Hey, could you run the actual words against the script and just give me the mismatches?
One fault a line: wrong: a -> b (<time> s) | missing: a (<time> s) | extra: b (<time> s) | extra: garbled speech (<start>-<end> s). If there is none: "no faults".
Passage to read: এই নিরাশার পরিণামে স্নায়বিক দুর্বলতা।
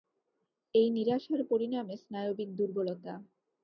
no faults